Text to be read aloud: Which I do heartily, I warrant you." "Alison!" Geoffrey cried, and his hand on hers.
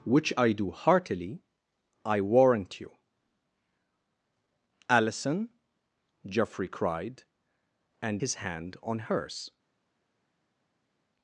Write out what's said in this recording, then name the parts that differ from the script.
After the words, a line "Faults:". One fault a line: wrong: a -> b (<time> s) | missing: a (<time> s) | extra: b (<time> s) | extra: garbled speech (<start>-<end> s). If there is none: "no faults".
Which I do heartily, I warrant you." "Alison!" Geoffrey cried, and his hand on hers.
Faults:
no faults